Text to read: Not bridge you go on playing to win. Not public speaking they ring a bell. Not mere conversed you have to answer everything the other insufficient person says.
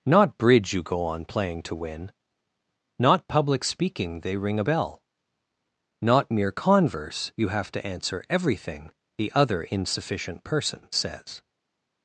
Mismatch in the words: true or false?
true